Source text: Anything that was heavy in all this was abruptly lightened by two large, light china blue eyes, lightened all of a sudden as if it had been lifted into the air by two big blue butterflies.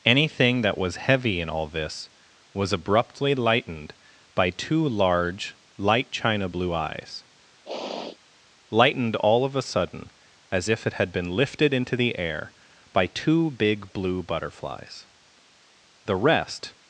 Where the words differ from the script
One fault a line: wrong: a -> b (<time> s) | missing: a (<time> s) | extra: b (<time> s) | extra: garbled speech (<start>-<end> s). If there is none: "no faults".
extra: The rest (16.1 s)